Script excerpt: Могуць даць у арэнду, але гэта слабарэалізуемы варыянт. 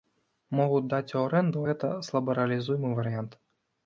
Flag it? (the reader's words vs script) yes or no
yes